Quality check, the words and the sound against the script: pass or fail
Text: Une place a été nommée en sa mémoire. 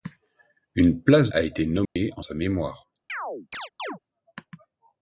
fail